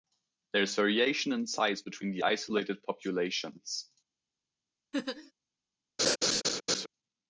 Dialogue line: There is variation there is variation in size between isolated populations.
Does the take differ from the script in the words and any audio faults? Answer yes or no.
yes